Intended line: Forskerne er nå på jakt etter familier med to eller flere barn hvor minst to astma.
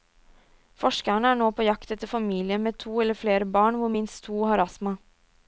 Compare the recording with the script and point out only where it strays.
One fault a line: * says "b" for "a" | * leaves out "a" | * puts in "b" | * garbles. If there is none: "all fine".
* puts in "har"